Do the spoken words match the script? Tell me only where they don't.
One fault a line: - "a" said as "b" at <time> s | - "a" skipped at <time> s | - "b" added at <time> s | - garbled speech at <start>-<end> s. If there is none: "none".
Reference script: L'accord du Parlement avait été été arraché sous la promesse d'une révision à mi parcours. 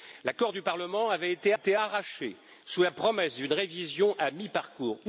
none